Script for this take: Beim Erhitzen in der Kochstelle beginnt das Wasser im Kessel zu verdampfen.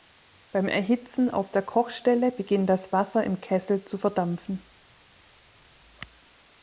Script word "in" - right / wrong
wrong